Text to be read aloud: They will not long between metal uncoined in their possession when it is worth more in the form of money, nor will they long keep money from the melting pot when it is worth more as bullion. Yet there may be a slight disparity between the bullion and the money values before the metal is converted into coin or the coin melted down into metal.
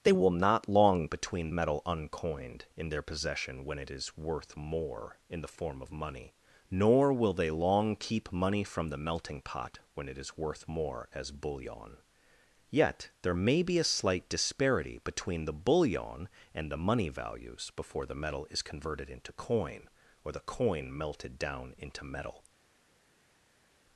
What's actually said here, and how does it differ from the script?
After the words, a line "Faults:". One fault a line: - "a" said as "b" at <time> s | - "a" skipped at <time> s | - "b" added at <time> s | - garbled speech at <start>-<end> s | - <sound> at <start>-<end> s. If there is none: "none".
They will not long between metal uncoined in their possession when it is worth more in the form of money, nor will they long keep money from the melting pot when it is worth more as bullion. Yet there may be a slight disparity between the bullion and the money values before the metal is converted into coin or the coin melted down into metal.
Faults:
none